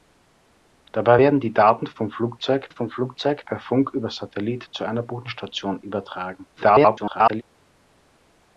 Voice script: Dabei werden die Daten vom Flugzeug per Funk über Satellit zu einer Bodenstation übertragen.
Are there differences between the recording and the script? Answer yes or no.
yes